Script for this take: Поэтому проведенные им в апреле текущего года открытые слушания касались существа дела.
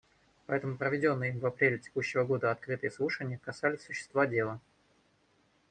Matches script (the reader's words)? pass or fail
pass